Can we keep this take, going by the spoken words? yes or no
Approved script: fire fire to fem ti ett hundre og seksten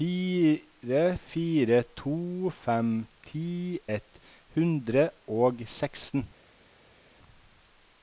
yes